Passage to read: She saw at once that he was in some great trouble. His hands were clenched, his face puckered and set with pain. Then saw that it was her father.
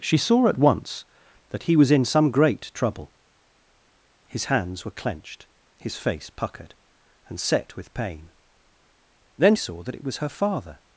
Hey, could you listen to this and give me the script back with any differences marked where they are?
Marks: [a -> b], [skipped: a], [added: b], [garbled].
She saw at once that he was in some great trouble. His hands were clenched, his face puckered and set with pain. Then saw that it was her father.